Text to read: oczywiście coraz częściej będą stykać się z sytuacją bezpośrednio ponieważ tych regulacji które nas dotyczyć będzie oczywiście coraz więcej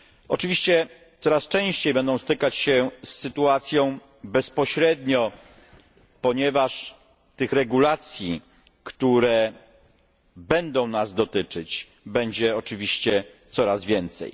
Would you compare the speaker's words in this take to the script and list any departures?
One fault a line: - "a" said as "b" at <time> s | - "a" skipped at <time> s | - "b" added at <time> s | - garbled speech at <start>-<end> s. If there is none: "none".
- "będą" added at 10.3 s